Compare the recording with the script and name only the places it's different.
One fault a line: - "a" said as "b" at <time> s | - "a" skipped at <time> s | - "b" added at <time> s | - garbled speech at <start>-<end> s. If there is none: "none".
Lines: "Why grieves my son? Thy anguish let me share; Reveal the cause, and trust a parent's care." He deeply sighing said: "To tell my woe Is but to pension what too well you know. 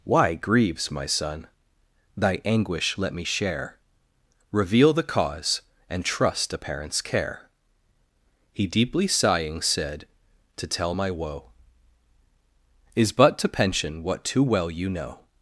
none